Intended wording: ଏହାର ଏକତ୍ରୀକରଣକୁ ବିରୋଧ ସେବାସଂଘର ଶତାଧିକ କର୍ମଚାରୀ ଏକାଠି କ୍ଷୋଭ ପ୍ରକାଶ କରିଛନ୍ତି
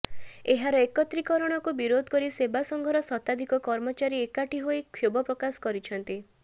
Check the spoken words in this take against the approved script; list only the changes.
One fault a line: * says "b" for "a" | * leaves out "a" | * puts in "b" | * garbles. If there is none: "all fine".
* puts in "କରି"
* puts in "ହୋଇ"